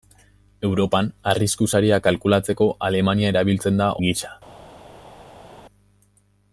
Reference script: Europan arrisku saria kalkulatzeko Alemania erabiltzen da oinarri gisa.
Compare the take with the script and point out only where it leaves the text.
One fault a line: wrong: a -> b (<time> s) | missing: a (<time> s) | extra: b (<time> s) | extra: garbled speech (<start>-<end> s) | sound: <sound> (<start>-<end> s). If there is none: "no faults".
missing: oinarri (3.9 s)